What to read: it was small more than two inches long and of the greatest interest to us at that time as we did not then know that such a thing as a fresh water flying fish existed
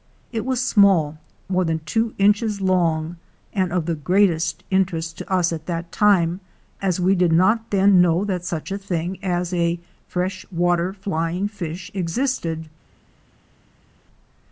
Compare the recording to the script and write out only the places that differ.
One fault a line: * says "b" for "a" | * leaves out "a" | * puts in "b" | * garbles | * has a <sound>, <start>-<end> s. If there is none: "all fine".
all fine